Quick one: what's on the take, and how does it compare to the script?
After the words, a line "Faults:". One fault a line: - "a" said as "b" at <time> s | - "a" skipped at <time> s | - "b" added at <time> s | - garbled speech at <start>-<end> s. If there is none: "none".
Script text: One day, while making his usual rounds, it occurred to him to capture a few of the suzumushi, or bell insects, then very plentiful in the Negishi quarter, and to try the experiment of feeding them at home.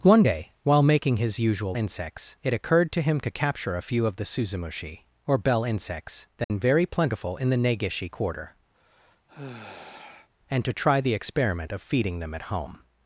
One day, while making his usual insects, it occurred to him to capture a few of the suzumushi, or bell insects, then very plentiful in the Negishi quarter, and to try the experiment of feeding them at home.
Faults:
- "rounds" said as "insects" at 1.7 s